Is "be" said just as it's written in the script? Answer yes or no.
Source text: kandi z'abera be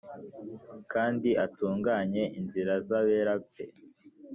yes